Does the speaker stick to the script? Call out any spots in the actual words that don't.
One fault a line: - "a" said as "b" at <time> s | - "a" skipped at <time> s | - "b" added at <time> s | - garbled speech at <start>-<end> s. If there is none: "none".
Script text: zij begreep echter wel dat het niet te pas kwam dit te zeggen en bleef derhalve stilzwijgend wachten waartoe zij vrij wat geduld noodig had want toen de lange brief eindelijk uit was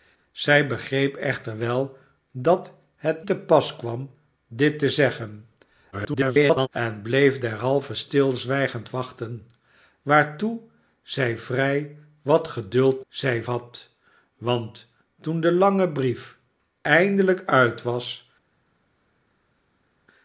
- "niet" skipped at 3.2 s
- garbled speech at 5.9-6.7 s
- "noodig" said as "zij" at 13.1 s